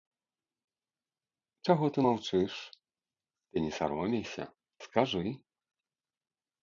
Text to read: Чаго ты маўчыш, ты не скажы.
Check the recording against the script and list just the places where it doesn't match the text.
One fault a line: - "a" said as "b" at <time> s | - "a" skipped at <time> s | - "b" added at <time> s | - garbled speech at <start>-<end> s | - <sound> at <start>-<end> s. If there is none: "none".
- "саромейся" added at 3.8 s